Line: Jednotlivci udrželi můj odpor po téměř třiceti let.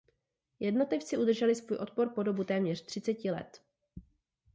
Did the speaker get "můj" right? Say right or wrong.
wrong